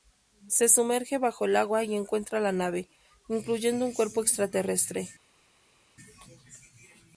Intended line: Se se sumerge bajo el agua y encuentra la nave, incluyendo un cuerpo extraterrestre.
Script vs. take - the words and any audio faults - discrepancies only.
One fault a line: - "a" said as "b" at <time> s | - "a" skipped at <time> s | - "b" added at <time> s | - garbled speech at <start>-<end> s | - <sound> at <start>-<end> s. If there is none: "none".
- "se" skipped at 0.7 s